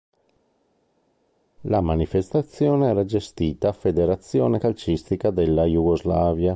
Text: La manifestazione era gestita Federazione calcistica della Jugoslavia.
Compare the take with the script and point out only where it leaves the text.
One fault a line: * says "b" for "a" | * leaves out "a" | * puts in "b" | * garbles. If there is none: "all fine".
all fine